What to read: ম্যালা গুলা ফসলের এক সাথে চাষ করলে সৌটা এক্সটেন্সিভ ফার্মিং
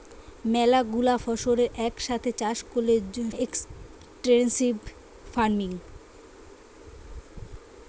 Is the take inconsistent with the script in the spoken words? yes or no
yes